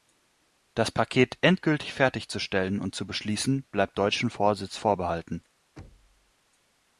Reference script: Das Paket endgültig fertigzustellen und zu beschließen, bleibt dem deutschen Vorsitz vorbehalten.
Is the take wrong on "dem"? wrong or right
wrong